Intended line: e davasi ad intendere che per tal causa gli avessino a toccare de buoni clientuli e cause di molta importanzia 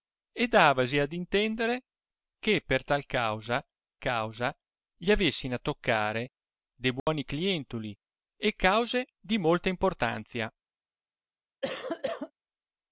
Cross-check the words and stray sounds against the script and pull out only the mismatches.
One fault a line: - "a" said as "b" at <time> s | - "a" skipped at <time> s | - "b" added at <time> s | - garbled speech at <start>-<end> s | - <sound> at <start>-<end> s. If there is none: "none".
- "causa" added at 4.0 s
- dropout at 7.0-7.1 s
- cough at 11.6-12.3 s